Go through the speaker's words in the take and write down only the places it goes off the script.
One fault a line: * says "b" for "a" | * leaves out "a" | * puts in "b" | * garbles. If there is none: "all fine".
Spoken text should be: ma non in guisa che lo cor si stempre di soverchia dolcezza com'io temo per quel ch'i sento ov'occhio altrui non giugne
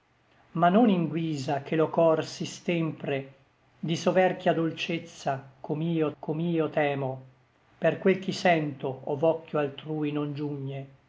* puts in "com'io"